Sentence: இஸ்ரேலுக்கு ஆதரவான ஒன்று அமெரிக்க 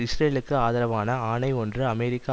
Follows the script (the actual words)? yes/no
no